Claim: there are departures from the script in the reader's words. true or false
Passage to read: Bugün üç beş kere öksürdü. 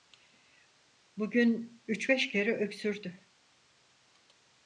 false